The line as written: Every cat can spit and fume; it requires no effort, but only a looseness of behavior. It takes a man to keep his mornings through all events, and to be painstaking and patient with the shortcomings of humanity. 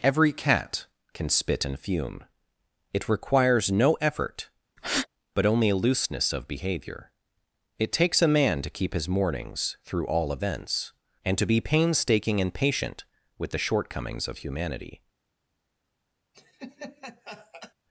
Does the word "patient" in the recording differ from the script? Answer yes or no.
no